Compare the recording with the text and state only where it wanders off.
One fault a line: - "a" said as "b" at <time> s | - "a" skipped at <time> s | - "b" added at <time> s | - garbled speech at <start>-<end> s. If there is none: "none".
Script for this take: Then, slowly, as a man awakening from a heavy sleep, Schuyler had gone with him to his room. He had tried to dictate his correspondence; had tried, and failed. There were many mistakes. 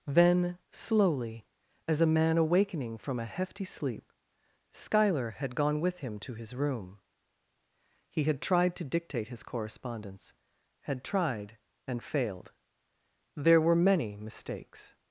- "heavy" said as "hefty" at 3.2 s